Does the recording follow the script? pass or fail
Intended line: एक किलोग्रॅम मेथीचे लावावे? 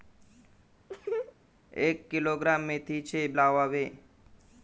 pass